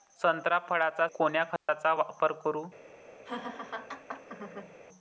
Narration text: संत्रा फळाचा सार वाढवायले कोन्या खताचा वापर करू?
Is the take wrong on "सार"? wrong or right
wrong